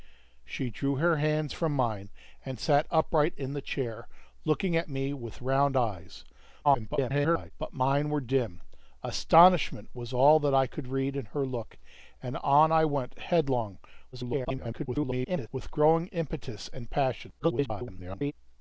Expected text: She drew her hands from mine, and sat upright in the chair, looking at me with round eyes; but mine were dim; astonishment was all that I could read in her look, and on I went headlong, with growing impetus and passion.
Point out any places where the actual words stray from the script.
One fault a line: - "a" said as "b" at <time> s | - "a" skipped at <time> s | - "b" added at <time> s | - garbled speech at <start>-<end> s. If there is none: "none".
- garbled speech at 6.6-7.5 s
- garbled speech at 14.1-15.5 s
- garbled speech at 17.4-18.3 s